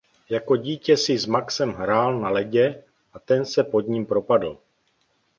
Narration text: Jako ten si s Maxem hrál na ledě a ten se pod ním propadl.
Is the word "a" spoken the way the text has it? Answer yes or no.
yes